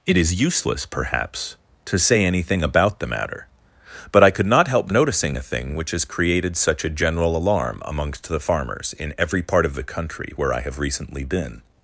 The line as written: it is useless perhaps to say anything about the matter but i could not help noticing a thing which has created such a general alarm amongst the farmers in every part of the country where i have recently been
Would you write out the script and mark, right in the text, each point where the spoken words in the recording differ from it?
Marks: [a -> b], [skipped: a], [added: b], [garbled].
it is useless perhaps to say anything about the matter but i could not help noticing a thing which has created such a general alarm amongst the farmers in every part of the country where i have recently been